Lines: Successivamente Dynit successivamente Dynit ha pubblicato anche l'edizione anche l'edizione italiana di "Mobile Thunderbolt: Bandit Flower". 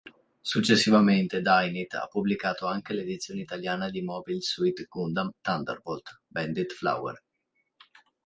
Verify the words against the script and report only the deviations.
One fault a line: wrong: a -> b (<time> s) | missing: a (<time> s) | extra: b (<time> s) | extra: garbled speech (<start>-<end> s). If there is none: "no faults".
missing: successivamente Dynit (1.9 s)
missing: anche l'edizione (3.4 s)
extra: Suit Gundam (4.4 s)